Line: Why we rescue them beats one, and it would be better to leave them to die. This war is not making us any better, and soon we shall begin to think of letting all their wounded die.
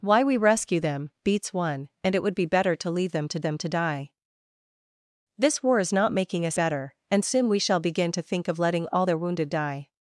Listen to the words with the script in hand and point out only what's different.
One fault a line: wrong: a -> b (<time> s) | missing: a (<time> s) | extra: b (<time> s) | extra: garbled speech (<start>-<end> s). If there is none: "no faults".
extra: them to (3.4 s)
missing: any (6.6 s)